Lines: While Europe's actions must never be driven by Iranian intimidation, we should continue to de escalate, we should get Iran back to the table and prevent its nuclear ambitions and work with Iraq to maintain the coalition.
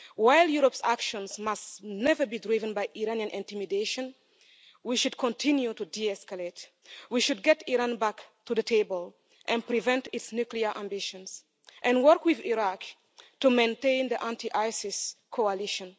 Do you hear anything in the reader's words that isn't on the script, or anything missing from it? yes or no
yes